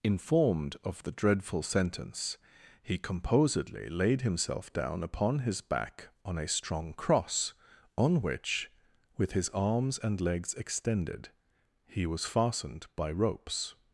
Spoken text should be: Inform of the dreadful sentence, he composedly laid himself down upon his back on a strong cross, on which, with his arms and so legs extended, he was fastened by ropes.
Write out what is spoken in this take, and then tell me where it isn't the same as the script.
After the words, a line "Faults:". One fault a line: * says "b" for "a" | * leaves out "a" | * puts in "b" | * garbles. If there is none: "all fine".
Informed of the dreadful sentence, he composedly laid himself down upon his back on a strong cross, on which, with his arms and legs extended, he was fastened by ropes.
Faults:
* says "Informed" for "Inform"
* leaves out "so"